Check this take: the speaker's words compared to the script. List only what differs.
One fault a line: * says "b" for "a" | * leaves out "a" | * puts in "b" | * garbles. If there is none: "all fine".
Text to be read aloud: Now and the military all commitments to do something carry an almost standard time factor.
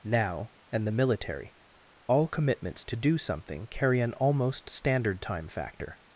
all fine